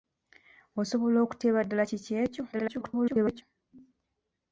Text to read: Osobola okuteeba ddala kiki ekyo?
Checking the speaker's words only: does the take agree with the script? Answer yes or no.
no